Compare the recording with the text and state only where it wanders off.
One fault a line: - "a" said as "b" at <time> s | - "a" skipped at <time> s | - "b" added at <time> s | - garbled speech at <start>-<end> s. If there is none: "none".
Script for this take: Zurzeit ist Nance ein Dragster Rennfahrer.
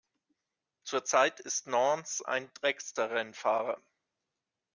none